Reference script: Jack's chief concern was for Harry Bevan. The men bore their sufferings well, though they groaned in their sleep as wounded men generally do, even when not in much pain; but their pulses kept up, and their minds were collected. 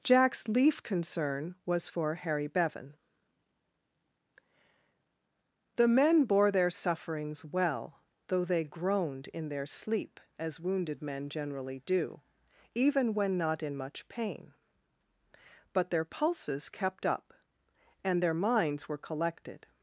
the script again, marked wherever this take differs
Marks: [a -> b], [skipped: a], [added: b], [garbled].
Jack's [chief -> leaf] concern was for Harry Bevan. The men bore their sufferings well, though they groaned in their sleep as wounded men generally do, even when not in much pain; but their pulses kept up, and their minds were collected.